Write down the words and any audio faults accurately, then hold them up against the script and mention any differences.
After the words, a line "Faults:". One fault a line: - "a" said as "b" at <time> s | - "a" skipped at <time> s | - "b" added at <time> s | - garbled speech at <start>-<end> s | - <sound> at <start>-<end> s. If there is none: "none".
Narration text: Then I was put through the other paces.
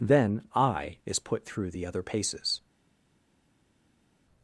Then I is put through the other paces.
Faults:
- "was" said as "is" at 1.1 s